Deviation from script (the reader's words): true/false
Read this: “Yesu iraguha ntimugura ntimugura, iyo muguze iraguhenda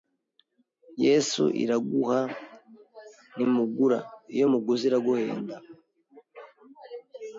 true